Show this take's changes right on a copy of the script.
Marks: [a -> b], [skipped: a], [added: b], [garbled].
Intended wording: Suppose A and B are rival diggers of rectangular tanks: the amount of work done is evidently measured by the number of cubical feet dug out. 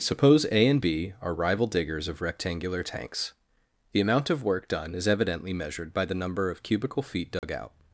Suppose A and B are rival diggers of rectangular tanks: the amount of work done is evidently measured by the number of cubical feet dug out.